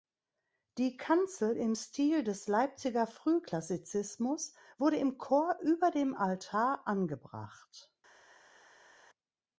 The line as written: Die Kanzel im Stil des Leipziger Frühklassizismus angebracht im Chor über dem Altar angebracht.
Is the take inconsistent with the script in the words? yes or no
yes